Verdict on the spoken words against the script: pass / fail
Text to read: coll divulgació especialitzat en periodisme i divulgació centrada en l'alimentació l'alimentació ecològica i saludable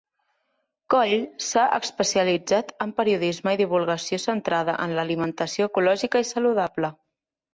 fail